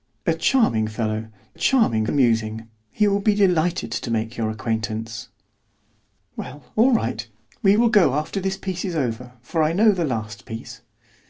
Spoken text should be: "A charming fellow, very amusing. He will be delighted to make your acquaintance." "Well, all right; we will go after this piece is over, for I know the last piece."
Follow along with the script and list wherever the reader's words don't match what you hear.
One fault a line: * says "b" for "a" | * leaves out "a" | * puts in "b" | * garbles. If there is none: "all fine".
* says "charming" for "very"